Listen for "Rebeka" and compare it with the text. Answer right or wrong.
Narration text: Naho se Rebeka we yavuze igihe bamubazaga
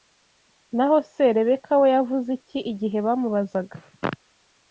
right